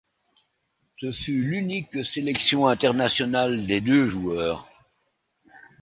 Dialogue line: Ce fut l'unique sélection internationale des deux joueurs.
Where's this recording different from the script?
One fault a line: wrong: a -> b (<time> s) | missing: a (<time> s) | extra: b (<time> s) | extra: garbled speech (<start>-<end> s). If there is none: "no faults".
no faults